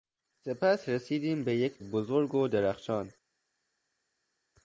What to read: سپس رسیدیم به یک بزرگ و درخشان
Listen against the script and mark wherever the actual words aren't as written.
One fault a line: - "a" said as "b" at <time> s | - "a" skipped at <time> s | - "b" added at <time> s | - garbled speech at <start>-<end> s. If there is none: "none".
none